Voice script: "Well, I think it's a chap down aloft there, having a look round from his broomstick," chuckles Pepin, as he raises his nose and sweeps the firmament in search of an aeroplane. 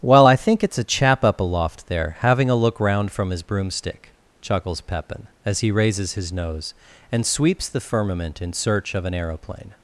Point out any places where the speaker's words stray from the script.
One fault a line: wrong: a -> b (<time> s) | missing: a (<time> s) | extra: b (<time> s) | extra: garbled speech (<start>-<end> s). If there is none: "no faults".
wrong: down -> up (1.2 s)